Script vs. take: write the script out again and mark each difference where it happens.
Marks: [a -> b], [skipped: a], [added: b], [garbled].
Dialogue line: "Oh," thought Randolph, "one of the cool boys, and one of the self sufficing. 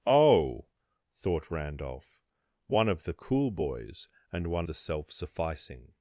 "Oh," thought Randolph, "one of the cool boys, and one [skipped: of] the self sufficing.